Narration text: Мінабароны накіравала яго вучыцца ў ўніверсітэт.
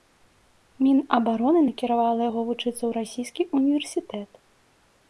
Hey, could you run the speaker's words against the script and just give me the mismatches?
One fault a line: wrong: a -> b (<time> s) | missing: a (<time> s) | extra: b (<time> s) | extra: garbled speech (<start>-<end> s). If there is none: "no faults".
extra: расійскі (3.0 s)